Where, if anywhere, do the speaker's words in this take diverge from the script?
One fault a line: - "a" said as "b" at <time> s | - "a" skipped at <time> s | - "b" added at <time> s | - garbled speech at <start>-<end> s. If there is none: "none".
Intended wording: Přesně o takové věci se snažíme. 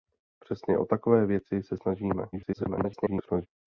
- garbled speech at 2.3-3.5 s